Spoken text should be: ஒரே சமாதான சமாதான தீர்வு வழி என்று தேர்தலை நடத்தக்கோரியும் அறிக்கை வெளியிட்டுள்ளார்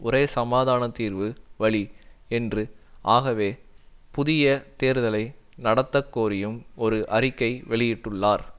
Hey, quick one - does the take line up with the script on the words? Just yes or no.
no